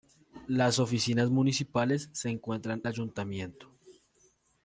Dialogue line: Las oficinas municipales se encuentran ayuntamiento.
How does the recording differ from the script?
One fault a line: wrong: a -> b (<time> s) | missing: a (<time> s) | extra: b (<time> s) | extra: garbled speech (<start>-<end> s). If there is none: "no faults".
no faults